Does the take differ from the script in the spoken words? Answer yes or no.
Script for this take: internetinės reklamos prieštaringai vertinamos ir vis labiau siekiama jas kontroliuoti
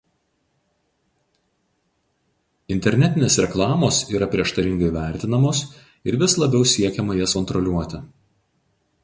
yes